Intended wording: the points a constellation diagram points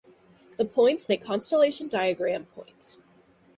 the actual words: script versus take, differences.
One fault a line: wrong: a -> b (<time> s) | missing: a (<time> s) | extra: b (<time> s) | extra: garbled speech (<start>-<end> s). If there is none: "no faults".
no faults